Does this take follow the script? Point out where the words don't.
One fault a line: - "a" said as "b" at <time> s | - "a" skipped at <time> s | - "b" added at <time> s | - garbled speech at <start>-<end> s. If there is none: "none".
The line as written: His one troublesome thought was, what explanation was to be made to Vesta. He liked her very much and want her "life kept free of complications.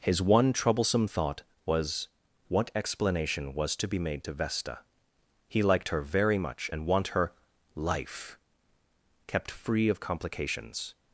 none